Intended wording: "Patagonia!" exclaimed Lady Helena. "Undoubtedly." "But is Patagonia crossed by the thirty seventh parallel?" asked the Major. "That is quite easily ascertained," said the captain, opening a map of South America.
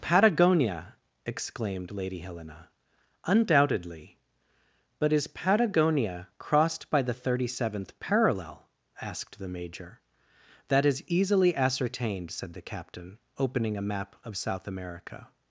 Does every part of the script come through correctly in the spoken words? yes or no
no